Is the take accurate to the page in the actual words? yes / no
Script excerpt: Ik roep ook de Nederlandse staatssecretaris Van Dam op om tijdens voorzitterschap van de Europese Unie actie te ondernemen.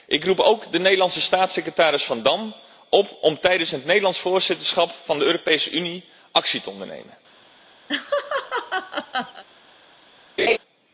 no